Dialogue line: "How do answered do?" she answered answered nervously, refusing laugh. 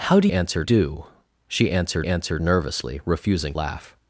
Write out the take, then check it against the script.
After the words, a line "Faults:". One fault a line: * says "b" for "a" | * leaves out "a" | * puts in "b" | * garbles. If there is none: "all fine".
"How do answered do?" she answered answered nervously, refusing laugh.
Faults:
all fine